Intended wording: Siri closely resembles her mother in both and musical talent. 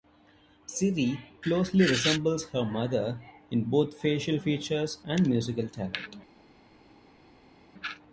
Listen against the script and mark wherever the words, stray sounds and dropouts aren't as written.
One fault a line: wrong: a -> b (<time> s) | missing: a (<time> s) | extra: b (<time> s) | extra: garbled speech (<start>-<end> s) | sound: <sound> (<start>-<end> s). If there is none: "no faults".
extra: facial features (4.0 s)